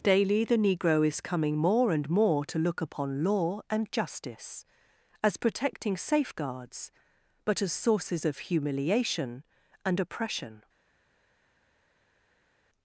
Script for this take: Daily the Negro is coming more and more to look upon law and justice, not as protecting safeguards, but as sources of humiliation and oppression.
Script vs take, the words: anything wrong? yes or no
yes